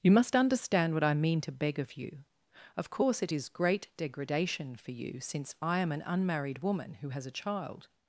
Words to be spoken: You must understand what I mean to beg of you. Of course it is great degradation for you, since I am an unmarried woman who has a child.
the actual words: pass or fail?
pass